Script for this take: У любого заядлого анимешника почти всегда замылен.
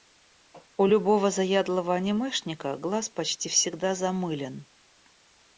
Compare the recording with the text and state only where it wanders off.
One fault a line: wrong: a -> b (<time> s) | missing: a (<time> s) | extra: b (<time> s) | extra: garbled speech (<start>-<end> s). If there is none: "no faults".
extra: глаз (2.8 s)